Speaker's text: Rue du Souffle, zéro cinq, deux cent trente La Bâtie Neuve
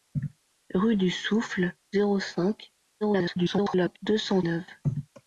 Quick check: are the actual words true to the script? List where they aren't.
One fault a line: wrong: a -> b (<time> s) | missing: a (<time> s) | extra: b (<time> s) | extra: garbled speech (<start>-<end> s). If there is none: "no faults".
extra: garbled speech (3.0-4.0 s)
missing: trente La Bâtie (4.4 s)